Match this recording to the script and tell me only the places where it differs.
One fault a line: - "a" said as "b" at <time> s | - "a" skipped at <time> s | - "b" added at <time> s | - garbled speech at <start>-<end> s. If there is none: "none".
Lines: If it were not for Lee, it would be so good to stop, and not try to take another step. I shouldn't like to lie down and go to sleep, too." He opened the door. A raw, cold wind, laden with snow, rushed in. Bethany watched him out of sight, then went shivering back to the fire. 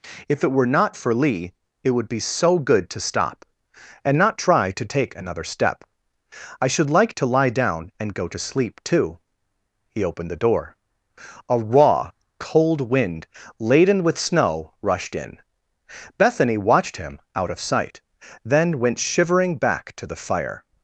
- "shouldn't" said as "should" at 6.7 s